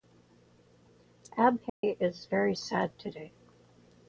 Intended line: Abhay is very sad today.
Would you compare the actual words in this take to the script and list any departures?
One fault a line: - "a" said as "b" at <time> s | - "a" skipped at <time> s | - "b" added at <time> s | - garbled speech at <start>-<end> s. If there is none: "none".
none